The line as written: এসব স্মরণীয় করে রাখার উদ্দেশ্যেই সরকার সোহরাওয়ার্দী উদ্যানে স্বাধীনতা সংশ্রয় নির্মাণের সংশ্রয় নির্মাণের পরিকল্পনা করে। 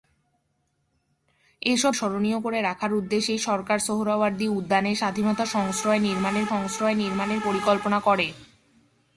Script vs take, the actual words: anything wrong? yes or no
no